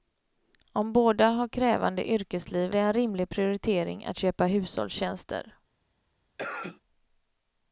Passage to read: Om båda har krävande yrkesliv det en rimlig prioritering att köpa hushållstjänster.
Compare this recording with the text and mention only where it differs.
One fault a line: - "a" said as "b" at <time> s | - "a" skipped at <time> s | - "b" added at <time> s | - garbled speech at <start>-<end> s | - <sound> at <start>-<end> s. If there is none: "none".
- cough at 6.4-6.8 s